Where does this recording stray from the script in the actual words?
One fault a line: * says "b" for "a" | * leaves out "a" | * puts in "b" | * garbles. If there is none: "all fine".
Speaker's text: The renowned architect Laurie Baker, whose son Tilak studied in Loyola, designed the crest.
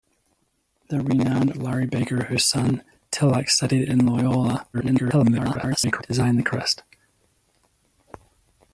* leaves out "architect"
* garbles